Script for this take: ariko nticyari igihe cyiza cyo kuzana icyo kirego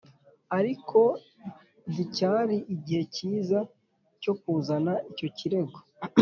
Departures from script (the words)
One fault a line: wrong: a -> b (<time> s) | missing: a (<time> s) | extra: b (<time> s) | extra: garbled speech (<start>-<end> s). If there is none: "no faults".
no faults